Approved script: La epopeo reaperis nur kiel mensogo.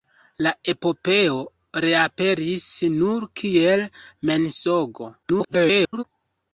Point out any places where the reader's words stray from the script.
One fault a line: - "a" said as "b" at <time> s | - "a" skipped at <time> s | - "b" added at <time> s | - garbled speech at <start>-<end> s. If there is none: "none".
- garbled speech at 5.2-6.0 s